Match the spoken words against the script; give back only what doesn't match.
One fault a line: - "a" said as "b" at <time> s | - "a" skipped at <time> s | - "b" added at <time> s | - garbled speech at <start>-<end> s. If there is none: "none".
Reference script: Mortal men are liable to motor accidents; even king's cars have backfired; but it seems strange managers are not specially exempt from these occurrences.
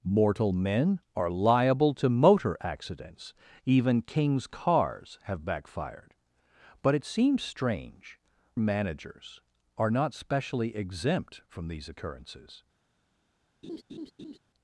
none